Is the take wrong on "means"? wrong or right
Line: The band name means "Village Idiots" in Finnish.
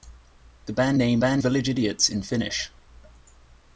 wrong